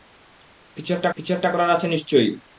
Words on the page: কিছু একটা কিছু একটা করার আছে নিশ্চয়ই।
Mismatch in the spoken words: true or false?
false